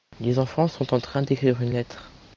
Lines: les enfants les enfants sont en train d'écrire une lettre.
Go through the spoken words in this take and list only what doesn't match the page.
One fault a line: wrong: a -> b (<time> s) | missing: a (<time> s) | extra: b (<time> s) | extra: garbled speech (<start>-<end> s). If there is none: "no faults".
missing: les enfants (0.7 s)